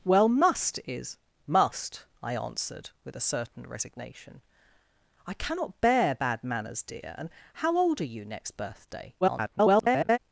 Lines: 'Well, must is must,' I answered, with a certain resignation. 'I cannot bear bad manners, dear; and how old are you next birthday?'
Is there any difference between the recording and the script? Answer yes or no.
yes